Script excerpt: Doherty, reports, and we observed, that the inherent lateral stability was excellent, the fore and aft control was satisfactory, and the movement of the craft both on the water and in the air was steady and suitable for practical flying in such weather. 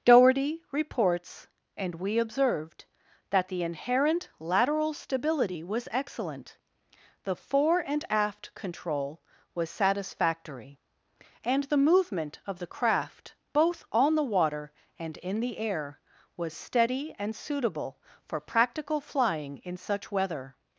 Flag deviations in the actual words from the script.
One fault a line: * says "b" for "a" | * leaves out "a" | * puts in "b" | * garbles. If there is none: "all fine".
all fine